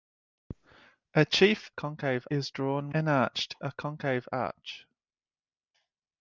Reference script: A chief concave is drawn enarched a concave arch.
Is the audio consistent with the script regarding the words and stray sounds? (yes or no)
yes